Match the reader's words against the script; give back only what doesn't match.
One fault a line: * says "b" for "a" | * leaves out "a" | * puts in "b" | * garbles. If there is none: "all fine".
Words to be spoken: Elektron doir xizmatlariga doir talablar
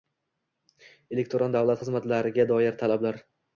* says "davlat" for "doir"